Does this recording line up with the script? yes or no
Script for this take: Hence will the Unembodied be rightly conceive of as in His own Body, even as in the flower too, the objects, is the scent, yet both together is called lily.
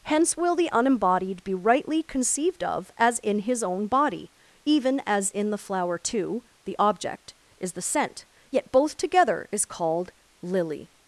no